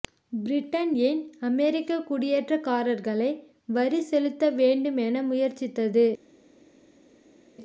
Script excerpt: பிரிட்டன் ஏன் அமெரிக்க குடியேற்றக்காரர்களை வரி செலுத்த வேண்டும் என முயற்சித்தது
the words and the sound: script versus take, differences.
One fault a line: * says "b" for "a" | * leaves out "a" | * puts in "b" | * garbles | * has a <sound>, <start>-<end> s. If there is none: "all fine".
all fine